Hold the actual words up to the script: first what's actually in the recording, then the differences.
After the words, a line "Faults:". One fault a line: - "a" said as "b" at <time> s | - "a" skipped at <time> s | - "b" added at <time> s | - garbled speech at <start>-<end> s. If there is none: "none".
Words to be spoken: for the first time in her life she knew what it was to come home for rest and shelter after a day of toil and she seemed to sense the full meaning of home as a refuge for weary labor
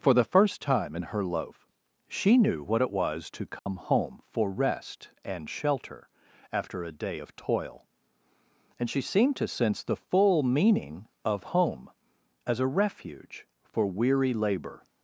for the first time in her loaf she knew what it was to come home for rest and shelter after a day of toil and she seemed to sense the full meaning of home as a refuge for weary labor
Faults:
- "life" said as "loaf" at 1.2 s